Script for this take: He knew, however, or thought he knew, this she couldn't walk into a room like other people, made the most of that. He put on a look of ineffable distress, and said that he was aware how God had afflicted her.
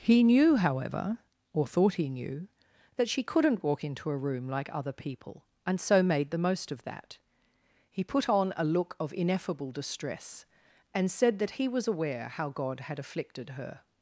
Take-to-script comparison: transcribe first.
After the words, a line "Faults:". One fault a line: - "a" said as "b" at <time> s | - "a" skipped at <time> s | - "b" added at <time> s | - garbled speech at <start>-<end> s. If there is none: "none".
He knew, however, or thought he knew, that she couldn't walk into a room like other people, and so made the most of that. He put on a look of ineffable distress, and said that he was aware how God had afflicted her.
Faults:
- "this" said as "that" at 3.0 s
- "and so" added at 5.7 s